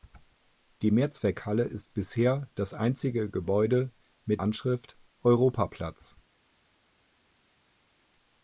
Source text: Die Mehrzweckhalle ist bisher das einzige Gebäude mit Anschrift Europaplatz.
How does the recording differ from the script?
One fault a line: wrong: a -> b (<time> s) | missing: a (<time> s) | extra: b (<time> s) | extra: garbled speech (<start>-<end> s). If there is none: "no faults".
no faults